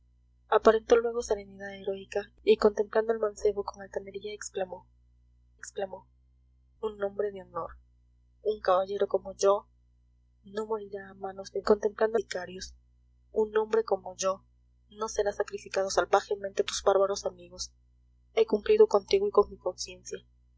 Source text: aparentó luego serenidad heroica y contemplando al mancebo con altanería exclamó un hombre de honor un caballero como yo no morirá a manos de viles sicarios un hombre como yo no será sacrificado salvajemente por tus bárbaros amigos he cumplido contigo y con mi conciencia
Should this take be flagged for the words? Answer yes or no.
yes